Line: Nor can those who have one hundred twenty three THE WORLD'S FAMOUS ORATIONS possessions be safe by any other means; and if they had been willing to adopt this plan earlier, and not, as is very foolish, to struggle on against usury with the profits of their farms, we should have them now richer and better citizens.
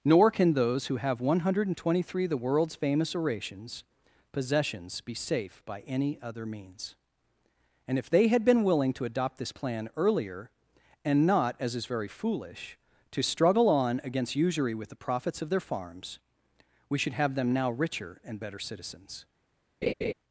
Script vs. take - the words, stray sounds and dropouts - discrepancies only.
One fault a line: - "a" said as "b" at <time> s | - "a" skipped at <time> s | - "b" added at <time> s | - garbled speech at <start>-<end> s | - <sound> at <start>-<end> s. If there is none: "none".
- laugh at 19.8-20.1 s